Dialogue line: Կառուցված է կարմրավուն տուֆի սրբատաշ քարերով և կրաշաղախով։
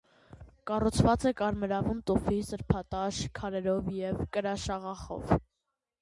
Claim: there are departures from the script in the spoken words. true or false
false